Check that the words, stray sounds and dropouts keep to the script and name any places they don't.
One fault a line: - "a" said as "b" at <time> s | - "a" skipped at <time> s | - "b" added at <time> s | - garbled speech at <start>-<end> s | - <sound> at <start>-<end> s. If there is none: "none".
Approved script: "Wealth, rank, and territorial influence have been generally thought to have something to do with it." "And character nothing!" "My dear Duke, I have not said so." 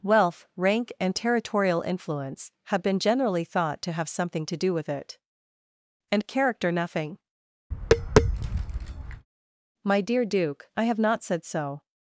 - tap at 7.7-9.3 s